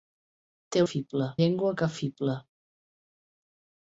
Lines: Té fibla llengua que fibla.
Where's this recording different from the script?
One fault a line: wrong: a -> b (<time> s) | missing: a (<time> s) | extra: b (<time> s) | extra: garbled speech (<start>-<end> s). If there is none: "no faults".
no faults